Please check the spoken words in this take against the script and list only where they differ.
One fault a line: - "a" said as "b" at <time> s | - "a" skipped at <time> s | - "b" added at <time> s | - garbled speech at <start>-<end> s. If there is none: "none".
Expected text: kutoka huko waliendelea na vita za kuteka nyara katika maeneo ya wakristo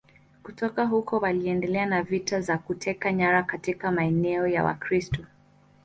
none